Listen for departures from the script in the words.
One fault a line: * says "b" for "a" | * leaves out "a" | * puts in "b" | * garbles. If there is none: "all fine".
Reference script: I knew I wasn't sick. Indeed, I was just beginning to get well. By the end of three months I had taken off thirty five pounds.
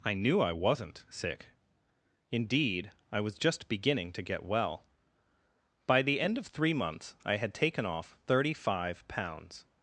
all fine